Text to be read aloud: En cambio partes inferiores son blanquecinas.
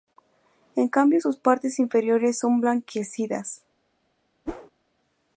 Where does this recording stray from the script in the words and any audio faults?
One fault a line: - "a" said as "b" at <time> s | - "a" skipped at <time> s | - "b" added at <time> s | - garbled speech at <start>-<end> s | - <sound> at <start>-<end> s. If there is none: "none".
- "sus" added at 1.2 s
- whoosh at 4.5-4.7 s